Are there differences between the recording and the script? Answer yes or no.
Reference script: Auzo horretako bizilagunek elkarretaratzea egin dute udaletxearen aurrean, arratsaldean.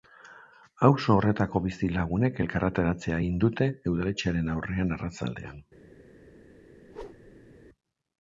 no